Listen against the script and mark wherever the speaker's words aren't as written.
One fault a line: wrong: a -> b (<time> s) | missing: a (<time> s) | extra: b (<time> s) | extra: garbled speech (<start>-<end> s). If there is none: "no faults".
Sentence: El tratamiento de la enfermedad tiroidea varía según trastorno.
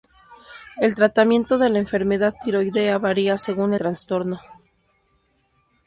no faults